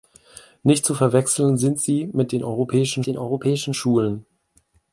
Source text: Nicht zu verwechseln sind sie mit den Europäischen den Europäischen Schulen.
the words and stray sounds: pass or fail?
pass